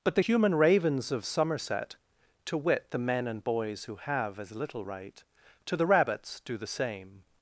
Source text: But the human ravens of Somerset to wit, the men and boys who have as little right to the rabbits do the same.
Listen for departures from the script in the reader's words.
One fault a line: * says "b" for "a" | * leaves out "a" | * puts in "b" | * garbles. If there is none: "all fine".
all fine